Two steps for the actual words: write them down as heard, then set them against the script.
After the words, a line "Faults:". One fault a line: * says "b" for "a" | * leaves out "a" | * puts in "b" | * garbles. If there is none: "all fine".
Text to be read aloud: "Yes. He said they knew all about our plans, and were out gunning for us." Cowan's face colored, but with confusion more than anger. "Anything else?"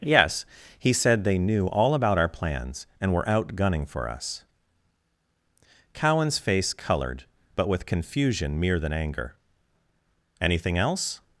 "Yes. He said they knew all about our plans, and were out gunning for us." Cowan's face colored, but with confusion mere than anger. "Anything else?"
Faults:
* says "mere" for "more"